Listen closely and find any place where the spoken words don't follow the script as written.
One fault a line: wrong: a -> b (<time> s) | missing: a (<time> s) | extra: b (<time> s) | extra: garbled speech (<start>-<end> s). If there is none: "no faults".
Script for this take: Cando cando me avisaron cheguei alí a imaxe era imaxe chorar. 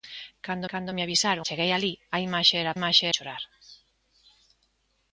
no faults